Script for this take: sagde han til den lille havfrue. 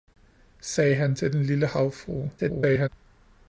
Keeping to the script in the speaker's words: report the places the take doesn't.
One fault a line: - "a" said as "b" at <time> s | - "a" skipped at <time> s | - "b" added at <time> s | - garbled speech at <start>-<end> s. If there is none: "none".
- garbled speech at 2.4-2.9 s